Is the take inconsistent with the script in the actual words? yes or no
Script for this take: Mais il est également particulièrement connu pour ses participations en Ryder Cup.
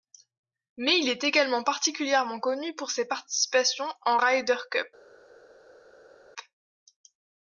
no